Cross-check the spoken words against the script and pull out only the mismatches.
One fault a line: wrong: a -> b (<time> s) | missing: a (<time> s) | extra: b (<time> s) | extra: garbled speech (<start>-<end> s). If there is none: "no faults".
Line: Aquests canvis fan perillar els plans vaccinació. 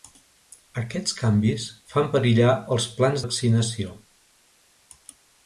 no faults